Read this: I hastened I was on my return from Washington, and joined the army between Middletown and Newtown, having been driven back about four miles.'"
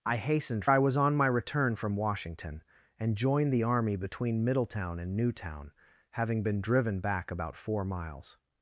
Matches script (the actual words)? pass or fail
pass